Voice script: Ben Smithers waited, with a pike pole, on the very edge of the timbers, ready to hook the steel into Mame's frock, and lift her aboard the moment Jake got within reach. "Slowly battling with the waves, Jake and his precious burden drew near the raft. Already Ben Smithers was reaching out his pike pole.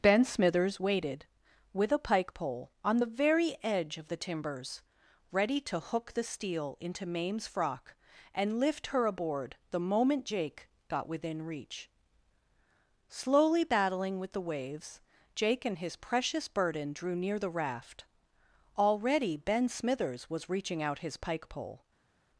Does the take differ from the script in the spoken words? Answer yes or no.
no